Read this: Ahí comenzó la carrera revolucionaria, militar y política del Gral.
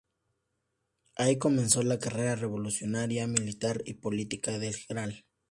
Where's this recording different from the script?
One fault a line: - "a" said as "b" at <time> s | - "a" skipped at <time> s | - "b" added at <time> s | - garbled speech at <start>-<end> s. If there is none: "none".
none